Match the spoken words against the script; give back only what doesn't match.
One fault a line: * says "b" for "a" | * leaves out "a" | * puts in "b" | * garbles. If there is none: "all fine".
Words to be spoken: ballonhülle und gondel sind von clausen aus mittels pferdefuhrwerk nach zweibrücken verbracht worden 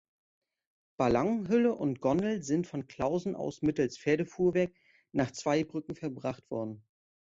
all fine